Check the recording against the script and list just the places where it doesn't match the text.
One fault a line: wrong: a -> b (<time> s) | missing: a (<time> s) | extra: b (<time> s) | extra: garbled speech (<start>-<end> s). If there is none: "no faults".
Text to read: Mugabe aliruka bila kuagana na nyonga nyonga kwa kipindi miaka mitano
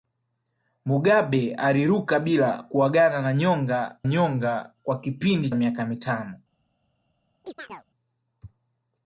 no faults